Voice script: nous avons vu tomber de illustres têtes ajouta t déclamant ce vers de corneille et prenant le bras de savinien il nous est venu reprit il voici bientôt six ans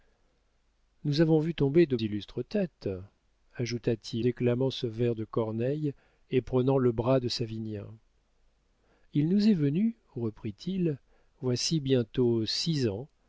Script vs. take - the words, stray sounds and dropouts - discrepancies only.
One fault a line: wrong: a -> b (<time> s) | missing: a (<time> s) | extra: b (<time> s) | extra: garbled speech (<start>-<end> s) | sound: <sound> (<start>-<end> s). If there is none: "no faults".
no faults